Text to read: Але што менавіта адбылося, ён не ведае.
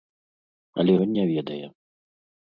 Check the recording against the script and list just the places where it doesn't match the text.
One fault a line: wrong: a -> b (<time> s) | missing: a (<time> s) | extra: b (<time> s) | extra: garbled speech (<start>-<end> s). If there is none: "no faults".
missing: што менавіта адбылося (0.9 s)